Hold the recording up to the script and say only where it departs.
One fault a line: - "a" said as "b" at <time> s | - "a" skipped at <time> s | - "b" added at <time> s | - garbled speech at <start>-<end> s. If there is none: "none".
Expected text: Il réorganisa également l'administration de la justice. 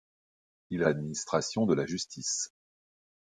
- "réorganisa également" skipped at 0.8 s